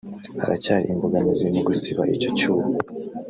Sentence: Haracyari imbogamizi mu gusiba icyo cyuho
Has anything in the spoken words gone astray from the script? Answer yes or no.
no